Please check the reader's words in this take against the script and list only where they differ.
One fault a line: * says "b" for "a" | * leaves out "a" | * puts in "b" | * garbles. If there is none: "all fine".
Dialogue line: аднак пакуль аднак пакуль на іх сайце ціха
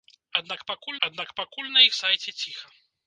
all fine